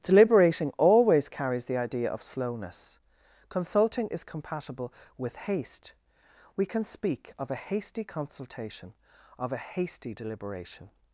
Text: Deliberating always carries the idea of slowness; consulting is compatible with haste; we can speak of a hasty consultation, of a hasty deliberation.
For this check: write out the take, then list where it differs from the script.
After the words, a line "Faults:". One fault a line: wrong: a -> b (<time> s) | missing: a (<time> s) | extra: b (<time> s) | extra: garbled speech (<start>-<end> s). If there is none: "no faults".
Deliberating always carries the idea of slowness; consulting is compatible with haste; we can speak of a hasty consultation, of a hasty deliberation.
Faults:
no faults